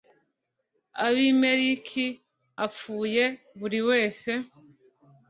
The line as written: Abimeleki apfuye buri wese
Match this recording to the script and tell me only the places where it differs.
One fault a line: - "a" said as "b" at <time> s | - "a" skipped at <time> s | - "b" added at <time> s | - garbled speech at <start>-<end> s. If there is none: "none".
none